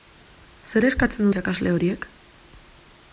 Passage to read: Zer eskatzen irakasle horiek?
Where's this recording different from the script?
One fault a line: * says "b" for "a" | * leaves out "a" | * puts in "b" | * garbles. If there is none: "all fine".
all fine